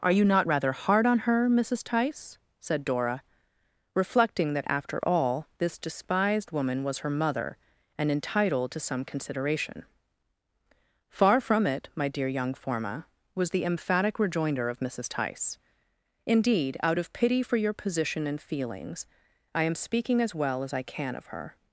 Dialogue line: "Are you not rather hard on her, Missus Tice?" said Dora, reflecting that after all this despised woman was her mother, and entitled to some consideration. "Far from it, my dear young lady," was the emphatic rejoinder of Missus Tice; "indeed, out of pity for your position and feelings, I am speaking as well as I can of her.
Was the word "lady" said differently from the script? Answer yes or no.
yes